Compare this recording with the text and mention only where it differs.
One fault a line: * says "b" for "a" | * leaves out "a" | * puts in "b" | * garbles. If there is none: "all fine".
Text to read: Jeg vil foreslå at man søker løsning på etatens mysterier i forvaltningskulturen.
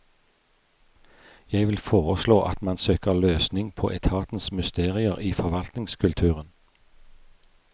all fine